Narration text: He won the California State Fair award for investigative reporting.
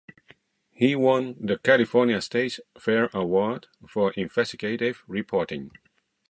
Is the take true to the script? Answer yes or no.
yes